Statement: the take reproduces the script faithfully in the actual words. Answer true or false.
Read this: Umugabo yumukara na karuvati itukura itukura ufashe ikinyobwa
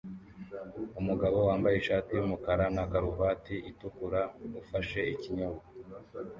false